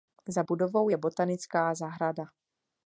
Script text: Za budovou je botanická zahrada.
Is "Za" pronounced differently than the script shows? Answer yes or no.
no